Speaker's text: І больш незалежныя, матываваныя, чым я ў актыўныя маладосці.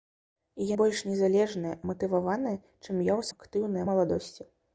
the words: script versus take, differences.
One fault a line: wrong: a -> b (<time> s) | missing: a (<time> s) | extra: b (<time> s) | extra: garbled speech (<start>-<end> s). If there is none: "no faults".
no faults